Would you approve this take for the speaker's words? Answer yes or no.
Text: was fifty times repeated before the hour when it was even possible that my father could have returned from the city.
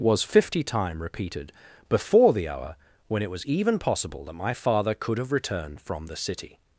no